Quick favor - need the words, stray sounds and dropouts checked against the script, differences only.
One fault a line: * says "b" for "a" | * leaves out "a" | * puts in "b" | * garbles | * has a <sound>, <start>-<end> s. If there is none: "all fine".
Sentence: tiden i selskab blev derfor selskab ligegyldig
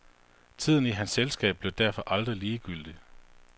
* puts in "hans"
* says "aldrig" for "selskab"